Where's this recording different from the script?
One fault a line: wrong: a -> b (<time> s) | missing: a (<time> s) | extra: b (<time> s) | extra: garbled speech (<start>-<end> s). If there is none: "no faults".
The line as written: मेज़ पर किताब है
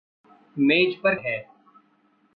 missing: किताब (1.1 s)